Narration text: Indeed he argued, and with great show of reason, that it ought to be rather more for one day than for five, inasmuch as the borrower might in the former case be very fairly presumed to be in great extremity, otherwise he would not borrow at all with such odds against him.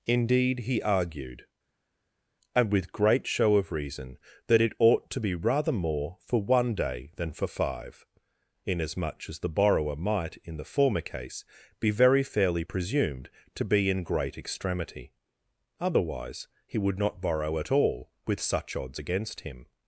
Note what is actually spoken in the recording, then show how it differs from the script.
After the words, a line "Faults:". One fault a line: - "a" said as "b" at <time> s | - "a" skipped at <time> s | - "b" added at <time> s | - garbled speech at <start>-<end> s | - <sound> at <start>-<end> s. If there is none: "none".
Indeed he argued, and with great show of reason, that it ought to be rather more for one day than for five, inasmuch as the borrower might in the former case be very fairly presumed to be in great extremity, otherwise he would not borrow at all with such odds against him.
Faults:
none